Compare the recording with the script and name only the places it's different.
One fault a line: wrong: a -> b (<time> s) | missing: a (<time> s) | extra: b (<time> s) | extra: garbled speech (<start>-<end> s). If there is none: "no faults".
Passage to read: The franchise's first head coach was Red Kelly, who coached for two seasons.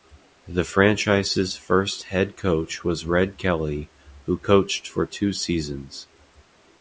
no faults